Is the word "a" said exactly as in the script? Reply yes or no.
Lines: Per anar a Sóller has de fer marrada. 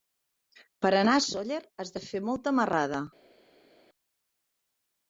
yes